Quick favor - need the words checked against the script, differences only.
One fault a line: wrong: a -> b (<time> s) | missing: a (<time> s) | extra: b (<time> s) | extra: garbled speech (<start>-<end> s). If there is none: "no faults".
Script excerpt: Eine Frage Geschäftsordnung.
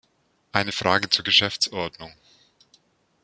extra: zur (1.1 s)